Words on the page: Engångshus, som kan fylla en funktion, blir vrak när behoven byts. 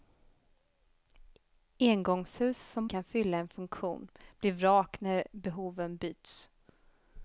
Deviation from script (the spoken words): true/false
false